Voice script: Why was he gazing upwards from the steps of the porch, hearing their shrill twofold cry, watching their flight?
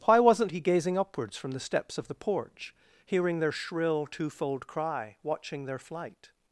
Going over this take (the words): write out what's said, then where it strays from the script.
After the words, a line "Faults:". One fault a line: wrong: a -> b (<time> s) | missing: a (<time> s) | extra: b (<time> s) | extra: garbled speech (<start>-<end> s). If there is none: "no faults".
Why wasn't he gazing upwards from the steps of the porch, hearing their shrill twofold cry, watching their flight?
Faults:
wrong: was -> wasn't (0.2 s)